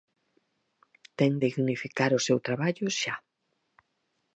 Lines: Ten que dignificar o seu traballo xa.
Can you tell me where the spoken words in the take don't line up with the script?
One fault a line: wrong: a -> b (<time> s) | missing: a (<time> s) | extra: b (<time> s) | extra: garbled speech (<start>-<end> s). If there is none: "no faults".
missing: que (1.3 s)